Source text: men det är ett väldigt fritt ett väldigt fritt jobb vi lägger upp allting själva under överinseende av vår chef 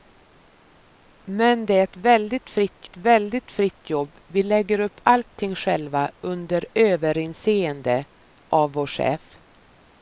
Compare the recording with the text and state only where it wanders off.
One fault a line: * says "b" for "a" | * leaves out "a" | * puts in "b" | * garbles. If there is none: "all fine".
all fine